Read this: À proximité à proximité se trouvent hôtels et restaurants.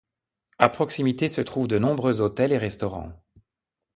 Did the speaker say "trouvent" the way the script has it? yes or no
no